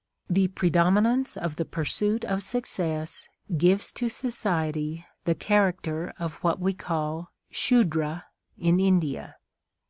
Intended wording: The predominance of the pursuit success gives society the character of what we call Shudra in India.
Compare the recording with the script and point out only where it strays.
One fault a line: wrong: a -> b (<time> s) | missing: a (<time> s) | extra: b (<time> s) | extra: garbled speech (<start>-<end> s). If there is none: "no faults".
extra: of (2.2 s)
extra: to (3.9 s)